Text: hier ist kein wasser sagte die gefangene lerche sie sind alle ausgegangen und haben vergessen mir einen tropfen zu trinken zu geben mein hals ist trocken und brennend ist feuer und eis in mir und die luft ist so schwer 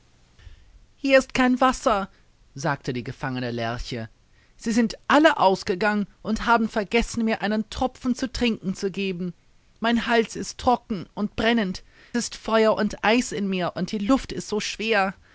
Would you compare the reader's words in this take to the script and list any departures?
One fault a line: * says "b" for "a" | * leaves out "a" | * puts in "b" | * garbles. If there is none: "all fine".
all fine